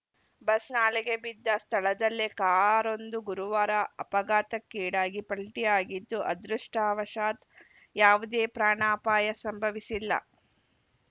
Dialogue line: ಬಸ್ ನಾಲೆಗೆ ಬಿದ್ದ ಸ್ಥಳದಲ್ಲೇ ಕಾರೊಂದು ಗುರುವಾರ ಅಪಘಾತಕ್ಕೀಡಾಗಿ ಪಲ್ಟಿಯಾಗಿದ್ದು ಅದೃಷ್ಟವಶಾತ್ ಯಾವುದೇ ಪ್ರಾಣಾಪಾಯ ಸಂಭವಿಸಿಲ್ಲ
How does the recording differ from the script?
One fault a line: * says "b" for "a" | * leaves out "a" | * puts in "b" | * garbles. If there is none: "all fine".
all fine